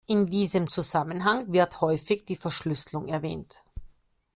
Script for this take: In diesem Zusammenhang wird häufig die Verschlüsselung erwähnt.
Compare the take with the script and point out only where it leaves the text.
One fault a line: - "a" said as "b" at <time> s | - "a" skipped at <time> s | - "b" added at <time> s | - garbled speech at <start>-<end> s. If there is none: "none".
none